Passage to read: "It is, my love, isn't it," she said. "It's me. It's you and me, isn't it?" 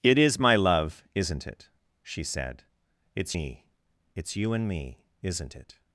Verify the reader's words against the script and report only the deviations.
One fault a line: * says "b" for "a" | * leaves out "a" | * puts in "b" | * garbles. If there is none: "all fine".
all fine